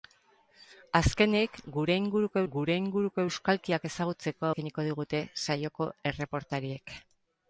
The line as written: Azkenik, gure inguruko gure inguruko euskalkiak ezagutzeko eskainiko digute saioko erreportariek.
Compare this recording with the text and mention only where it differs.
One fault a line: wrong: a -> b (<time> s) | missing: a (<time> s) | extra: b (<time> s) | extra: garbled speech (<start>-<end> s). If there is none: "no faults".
no faults